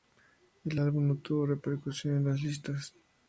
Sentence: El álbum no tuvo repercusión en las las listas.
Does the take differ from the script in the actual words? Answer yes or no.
yes